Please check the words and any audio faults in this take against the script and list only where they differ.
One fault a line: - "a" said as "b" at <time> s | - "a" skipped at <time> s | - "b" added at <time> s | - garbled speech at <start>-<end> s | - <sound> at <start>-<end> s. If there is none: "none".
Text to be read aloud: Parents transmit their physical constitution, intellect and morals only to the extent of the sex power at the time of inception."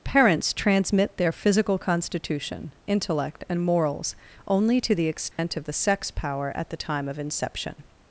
- dropout at 5.3-5.4 s